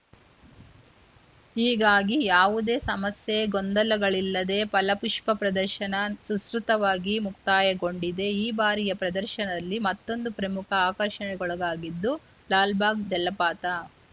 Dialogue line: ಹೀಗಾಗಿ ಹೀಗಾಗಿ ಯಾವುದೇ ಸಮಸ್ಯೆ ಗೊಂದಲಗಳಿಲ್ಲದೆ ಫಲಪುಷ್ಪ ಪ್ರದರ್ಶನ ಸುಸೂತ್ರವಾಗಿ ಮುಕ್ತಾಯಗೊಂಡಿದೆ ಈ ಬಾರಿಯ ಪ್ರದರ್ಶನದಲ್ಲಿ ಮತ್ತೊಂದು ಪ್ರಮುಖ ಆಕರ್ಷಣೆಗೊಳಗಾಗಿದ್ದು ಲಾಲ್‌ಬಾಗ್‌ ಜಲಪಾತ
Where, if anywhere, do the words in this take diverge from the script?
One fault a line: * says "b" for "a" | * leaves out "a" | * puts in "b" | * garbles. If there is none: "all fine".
* leaves out "ಹೀಗಾಗಿ"